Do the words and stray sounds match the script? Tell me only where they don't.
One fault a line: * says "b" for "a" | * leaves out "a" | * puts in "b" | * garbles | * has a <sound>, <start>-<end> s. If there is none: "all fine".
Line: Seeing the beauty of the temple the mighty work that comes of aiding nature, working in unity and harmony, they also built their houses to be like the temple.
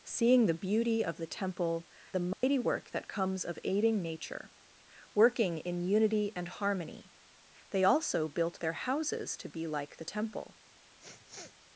* has a dropout, 2.3-2.4 s
* has a sniff, 11.0-11.6 s